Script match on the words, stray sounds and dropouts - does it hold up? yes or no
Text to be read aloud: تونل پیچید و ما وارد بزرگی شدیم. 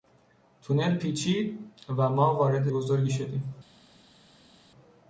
yes